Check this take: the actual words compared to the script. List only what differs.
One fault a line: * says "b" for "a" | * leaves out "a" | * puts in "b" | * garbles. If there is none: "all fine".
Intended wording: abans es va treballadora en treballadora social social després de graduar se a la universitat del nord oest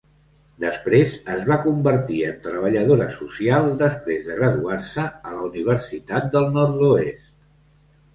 * says "després" for "abans"
* says "convertir" for "treballadora"
* leaves out "social"